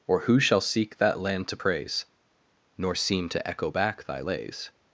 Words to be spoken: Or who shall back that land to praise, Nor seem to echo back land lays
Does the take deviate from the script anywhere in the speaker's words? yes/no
yes